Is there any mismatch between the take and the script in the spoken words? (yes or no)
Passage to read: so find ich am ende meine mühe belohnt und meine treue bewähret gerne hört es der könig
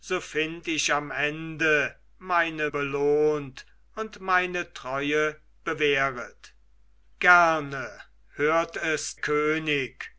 yes